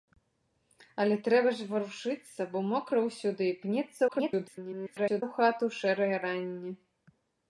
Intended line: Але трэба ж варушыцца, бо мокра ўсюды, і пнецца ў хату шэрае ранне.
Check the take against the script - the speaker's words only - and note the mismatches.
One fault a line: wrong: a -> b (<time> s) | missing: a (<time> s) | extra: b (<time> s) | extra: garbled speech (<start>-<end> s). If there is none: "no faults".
extra: garbled speech (4.1-5.2 s)